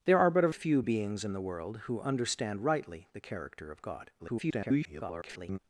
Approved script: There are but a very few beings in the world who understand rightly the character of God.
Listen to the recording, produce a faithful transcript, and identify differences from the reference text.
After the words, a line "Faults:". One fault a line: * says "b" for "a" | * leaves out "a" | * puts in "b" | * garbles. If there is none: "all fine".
There are but a few beings in the world who understand rightly the character of God. [garbled]
Faults:
* leaves out "very"
* garbles